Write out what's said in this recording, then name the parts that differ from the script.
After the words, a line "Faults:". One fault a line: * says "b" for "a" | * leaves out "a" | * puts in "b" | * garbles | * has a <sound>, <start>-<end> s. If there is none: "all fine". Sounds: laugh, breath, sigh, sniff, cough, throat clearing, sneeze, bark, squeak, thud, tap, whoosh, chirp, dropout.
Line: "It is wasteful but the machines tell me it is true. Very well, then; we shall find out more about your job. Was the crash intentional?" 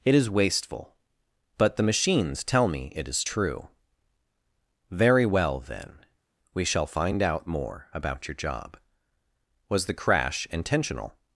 "It is wasteful but the machines tell me it is true. Very well, then; we shall find out more about your job. Was the crash intentional?"
Faults:
all fine